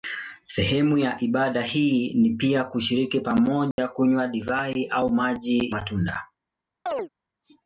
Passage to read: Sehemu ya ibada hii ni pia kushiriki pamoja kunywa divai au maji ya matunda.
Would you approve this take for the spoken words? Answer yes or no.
no